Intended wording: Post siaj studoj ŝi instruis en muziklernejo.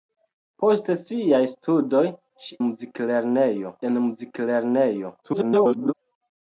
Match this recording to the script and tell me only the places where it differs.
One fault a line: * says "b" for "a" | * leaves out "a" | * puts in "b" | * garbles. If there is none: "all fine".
* says "muziklernejo" for "instruis"
* garbles